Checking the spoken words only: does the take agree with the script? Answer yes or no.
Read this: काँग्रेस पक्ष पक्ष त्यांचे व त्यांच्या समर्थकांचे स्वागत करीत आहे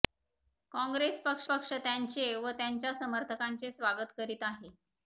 yes